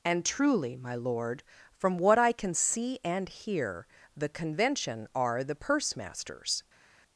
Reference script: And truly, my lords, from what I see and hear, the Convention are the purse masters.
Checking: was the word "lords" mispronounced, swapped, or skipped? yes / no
yes